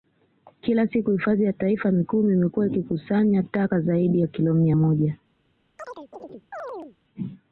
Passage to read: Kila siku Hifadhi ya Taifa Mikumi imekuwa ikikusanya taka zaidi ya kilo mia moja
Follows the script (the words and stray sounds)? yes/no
no